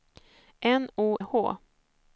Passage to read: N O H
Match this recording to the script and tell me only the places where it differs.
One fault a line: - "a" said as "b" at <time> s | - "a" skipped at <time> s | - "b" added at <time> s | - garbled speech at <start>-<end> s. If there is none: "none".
none